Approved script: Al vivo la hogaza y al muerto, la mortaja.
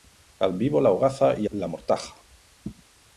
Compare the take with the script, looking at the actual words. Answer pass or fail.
fail